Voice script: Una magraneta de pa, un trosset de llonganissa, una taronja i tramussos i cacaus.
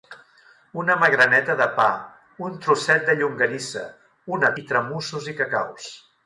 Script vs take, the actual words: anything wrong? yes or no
yes